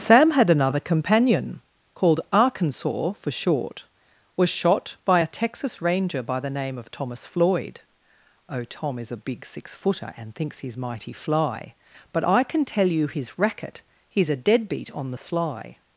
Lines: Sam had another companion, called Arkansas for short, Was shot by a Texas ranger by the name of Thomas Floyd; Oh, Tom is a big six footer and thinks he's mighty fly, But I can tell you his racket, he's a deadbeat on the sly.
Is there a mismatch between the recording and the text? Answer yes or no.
no